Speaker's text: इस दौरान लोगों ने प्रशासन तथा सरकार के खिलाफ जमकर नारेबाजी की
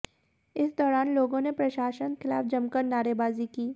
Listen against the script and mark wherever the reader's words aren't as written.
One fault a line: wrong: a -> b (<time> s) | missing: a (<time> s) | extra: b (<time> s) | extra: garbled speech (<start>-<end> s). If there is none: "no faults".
missing: तथा सरकार के (2.1 s)